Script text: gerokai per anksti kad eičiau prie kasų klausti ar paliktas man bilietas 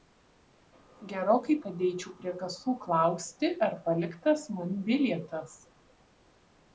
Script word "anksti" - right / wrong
wrong